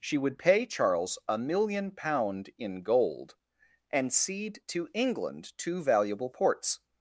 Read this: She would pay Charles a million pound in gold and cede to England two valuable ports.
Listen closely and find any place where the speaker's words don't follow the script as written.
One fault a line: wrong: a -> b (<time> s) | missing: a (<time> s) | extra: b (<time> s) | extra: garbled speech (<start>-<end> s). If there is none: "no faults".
no faults